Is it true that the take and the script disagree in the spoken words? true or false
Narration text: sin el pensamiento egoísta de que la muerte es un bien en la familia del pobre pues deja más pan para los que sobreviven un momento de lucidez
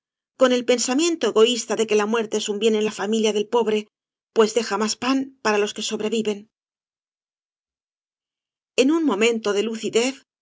true